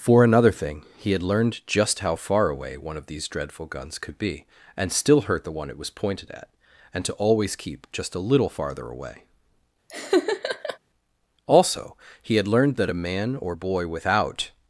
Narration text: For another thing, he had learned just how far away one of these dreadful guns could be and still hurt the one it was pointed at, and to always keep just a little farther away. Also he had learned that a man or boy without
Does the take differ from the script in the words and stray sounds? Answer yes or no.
yes